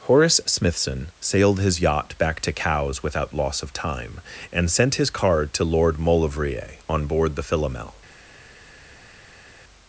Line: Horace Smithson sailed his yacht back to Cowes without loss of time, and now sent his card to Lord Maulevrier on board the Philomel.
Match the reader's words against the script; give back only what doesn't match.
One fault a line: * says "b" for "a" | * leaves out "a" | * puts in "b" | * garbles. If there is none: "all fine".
* leaves out "now"